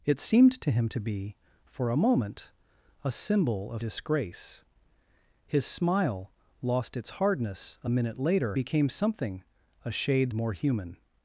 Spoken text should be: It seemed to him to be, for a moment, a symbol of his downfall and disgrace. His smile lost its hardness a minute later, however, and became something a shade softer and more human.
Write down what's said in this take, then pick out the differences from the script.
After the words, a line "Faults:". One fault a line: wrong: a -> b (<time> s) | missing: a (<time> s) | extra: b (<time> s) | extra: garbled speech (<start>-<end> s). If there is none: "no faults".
It seemed to him to be, for a moment, a symbol of disgrace. His smile lost its hardness a minute later, became something a shade more human.
Faults:
missing: his downfall and (3.8 s)
missing: however and (8.6 s)
missing: softer and (10.3 s)